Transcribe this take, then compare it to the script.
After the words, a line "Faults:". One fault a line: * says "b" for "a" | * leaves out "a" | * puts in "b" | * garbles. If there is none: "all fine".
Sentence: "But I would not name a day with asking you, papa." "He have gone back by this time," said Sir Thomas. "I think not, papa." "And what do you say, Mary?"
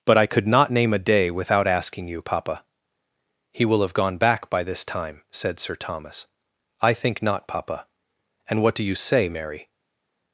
"But I could not name a day without asking you, papa." "He will have gone back by this time," said Sir Thomas. "I think not, papa." "And what do you say, Mary?"
Faults:
* says "could" for "would"
* says "without" for "with"
* puts in "will"